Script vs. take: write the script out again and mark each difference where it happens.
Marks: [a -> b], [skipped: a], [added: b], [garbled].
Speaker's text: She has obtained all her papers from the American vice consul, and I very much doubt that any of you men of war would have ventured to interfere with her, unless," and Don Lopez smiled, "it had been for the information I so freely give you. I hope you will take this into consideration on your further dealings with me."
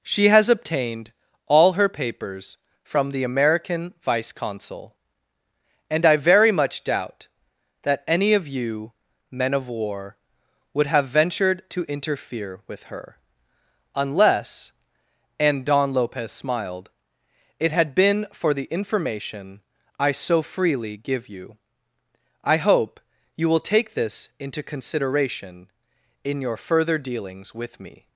She has obtained all her papers from the American vice consul, and I very much doubt that any of you men of war would have ventured to interfere with her, unless," and Don Lopez smiled, "it had been for the information I so freely give you. I hope you will take this into consideration [on -> in] your further dealings with me."